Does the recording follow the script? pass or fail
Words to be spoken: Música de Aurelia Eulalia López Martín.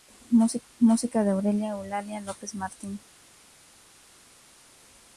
pass